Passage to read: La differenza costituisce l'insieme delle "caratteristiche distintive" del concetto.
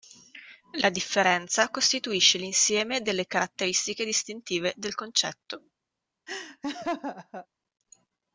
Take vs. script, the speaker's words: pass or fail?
pass